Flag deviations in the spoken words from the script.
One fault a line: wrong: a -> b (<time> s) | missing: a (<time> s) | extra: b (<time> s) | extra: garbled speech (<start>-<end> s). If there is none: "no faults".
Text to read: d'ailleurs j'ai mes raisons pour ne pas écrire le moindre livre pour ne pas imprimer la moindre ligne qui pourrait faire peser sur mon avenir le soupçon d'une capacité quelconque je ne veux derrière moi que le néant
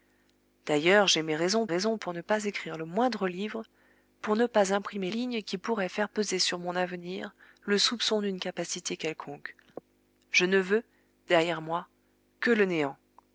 extra: raisons (1.7 s)
missing: la moindre (5.1 s)